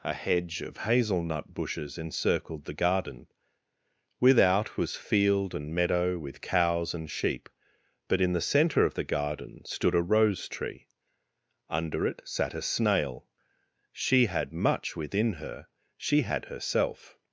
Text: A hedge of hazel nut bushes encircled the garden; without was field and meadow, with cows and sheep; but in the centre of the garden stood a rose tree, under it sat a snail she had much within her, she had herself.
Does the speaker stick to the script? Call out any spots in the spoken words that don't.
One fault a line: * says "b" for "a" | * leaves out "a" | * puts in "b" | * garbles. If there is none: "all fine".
all fine